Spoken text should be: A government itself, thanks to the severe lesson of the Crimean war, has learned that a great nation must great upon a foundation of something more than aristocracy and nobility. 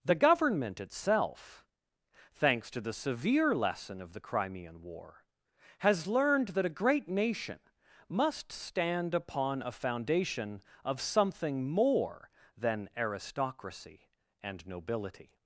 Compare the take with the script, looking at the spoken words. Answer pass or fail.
fail